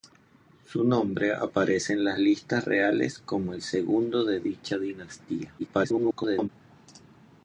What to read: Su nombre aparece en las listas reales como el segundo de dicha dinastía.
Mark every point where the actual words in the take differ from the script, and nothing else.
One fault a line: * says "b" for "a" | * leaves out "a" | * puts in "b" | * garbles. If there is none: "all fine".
* garbles